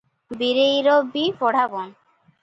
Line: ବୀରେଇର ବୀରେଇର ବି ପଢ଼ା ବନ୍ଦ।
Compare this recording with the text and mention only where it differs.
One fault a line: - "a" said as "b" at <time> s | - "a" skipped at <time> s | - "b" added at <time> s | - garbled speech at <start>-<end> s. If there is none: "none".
- "ବୀରେଇର" skipped at 0.9 s